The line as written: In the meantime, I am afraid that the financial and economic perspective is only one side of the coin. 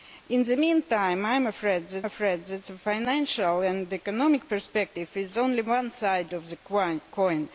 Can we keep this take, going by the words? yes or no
no